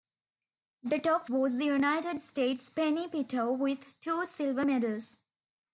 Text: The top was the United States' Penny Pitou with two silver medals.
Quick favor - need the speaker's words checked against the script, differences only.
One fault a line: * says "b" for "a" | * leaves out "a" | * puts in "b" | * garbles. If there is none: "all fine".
all fine